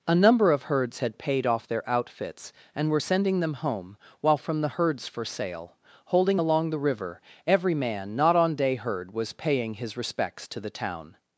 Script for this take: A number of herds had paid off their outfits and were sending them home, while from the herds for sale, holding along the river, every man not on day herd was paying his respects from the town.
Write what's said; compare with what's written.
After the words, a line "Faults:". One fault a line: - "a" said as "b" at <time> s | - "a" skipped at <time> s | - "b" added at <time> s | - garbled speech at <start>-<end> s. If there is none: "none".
A number of herds had paid off their outfits and were sending them home, while from the herds for sale, holding along the river, every man not on day herd was paying his respects to the town.
Faults:
- "from" said as "to" at 10.5 s